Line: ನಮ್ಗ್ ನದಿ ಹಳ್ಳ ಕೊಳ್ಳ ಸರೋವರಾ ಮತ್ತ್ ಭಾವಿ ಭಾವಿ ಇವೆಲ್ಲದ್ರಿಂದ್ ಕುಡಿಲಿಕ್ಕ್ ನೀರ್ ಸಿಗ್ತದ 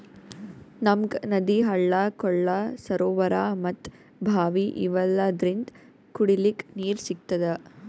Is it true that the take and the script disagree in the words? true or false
true